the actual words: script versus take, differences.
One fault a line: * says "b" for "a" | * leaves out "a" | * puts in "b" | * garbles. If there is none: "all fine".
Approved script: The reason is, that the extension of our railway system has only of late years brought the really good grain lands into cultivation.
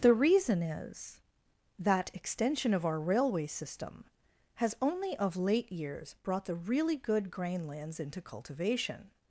* leaves out "the"